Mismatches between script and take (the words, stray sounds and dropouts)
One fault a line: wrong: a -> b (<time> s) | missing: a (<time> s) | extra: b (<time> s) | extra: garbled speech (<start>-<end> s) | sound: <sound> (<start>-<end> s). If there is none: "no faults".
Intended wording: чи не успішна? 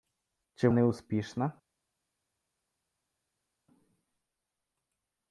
no faults